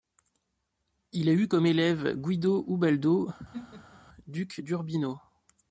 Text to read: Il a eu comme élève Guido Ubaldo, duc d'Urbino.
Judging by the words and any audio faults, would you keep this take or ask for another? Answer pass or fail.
fail